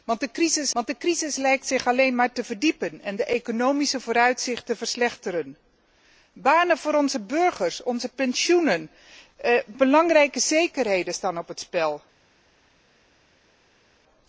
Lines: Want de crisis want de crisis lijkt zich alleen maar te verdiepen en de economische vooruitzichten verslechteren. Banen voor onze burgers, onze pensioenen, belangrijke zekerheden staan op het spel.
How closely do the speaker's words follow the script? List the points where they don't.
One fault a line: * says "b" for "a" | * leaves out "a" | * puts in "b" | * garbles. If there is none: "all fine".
all fine